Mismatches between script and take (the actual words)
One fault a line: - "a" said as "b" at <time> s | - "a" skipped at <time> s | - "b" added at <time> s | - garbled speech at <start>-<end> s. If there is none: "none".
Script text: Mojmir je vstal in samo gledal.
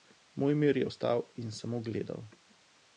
none